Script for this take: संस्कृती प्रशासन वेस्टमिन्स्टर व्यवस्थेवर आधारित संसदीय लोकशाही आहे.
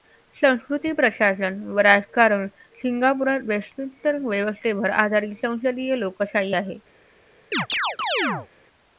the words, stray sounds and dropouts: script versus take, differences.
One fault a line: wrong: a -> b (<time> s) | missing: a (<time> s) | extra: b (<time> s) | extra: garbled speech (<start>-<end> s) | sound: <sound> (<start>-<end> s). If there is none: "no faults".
extra: व राजकारण सिंगापुरात (1.7 s)
sound: chirp (7.5-8.5 s)